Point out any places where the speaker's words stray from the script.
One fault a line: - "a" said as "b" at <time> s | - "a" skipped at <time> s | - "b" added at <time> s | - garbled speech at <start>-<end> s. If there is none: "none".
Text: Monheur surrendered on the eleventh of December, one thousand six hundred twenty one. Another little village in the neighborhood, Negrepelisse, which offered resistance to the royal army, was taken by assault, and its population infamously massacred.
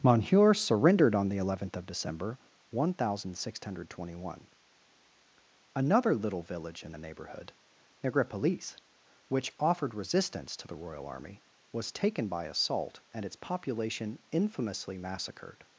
none